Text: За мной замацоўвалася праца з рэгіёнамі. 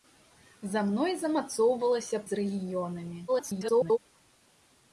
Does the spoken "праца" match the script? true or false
false